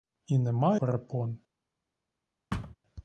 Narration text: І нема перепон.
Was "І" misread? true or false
false